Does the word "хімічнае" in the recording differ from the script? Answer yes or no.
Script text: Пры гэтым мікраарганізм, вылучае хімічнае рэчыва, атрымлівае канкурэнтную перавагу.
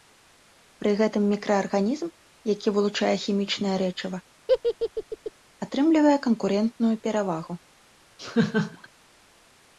no